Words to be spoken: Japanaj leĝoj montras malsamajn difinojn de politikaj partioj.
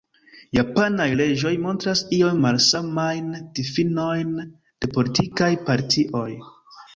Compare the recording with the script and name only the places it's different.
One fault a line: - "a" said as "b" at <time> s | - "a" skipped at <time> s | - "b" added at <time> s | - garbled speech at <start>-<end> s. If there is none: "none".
- "iom" added at 2.2 s